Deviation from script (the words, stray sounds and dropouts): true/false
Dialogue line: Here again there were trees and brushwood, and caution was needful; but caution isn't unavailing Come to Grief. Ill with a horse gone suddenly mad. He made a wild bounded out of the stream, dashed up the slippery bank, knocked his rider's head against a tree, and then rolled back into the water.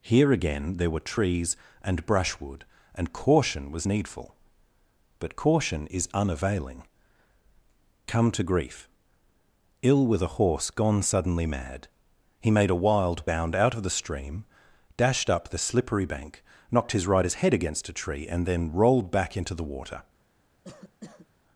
true